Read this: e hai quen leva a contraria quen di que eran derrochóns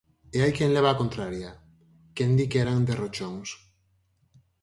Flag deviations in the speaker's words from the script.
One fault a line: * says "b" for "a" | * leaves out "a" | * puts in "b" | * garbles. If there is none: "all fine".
all fine